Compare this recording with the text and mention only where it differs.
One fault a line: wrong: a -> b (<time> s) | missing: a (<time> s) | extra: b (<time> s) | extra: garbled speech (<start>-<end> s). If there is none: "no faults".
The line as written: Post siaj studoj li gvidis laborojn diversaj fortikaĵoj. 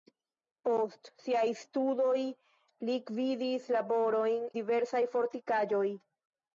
no faults